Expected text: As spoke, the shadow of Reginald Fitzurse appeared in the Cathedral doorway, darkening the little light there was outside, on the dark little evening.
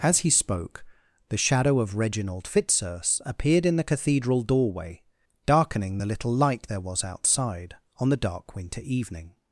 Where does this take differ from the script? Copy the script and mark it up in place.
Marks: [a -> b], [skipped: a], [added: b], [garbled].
As [added: he] spoke, the shadow of Reginald Fitzurse appeared in the Cathedral doorway, darkening the little light there was outside, on the dark [little -> winter] evening.